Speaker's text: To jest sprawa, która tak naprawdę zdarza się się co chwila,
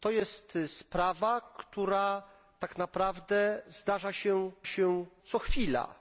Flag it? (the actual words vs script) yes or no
no